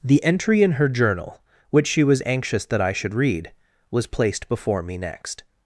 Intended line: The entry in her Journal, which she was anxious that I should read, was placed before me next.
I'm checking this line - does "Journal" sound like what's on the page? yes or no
yes